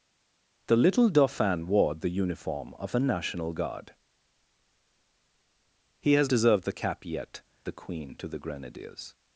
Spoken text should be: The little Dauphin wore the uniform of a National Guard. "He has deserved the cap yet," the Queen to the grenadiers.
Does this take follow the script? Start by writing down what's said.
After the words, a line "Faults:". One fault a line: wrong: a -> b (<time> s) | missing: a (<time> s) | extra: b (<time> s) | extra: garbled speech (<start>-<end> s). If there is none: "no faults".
The little Dauphin wore the uniform of a National Guard. "He has deserved the cap yet," the Queen to the grenadiers.
Faults:
no faults